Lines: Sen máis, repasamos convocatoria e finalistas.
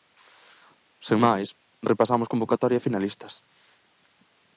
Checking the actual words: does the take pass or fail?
pass